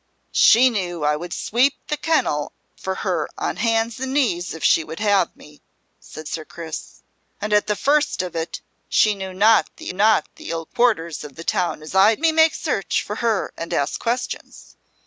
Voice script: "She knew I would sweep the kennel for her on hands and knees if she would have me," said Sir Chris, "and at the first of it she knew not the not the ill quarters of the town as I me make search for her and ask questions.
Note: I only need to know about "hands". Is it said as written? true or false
true